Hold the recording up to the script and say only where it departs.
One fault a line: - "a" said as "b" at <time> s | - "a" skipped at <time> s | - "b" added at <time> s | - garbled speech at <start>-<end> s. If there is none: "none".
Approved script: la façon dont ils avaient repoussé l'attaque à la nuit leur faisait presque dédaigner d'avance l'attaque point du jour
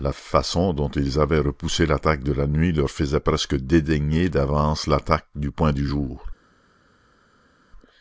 - "à" said as "de" at 2.2 s
- "du" added at 5.3 s